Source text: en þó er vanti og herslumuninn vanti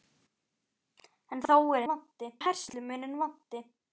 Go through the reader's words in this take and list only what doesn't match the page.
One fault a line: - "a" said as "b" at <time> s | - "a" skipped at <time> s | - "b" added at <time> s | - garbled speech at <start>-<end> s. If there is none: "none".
none